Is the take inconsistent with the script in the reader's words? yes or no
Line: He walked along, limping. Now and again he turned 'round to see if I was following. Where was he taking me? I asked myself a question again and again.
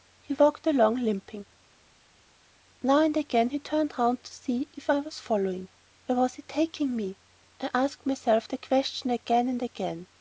yes